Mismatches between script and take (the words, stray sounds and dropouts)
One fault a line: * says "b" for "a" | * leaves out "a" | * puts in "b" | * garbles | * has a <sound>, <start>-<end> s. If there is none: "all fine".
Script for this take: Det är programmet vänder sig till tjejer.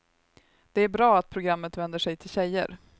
* puts in "bra att"